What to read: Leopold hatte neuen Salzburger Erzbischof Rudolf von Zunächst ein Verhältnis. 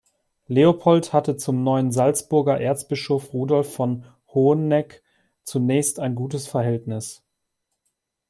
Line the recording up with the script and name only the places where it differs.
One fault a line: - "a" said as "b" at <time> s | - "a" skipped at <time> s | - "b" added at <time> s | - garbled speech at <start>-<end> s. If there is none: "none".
- "zum" added at 1.4 s
- "Hoheneck" added at 4.3 s
- "gutes" added at 6.2 s